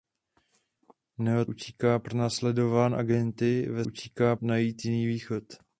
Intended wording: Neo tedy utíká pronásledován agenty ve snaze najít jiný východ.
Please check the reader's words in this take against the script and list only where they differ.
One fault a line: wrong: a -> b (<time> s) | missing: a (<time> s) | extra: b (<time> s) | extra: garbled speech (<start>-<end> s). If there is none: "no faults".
missing: tedy (1.4 s)
wrong: snaze -> utíká (3.8 s)